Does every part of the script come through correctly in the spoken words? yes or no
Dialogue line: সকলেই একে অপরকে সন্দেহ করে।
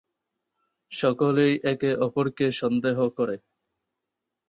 yes